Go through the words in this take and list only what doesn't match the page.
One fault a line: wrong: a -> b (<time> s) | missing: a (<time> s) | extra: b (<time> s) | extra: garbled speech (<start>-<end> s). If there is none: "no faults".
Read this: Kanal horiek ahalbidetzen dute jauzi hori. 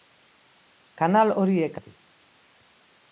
missing: ahalbidetzen dute jauzi (1.8 s)